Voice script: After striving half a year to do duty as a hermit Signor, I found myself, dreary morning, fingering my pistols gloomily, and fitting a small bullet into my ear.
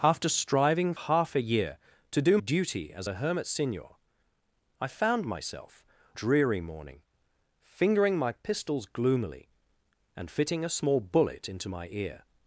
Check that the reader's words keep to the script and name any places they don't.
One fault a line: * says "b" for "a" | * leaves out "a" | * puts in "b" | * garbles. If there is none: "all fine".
all fine